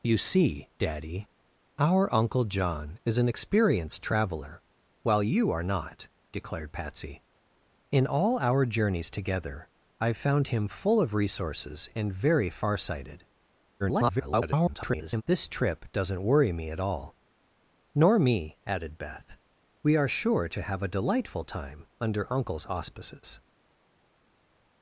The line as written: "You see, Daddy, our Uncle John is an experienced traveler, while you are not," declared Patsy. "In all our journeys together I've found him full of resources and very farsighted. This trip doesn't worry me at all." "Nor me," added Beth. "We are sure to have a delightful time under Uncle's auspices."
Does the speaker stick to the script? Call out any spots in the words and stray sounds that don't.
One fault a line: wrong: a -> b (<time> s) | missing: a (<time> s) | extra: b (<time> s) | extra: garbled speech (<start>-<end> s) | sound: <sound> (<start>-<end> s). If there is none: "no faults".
extra: garbled speech (13.8-15.2 s)